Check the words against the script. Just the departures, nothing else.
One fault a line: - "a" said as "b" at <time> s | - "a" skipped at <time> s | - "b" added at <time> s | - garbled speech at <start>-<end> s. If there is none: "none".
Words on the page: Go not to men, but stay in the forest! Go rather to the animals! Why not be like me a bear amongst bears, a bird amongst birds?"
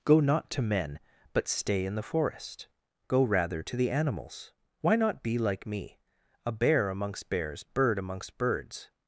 - "a" skipped at 7.6 s